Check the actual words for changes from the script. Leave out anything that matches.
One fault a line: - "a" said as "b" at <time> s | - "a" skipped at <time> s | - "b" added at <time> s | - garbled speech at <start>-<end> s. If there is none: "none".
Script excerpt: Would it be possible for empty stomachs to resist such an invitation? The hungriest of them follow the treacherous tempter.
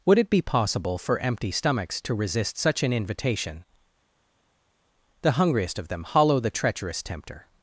- "follow" said as "hollow" at 6.0 s